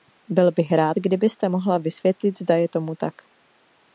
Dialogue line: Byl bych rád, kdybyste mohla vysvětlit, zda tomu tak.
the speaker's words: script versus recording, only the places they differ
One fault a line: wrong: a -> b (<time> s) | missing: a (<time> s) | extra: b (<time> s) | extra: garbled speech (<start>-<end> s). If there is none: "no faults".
extra: je (2.5 s)